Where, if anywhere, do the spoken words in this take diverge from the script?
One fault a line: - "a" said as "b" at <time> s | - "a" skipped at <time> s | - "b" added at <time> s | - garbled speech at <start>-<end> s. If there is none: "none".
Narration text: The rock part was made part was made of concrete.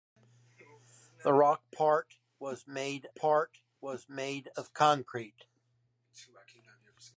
none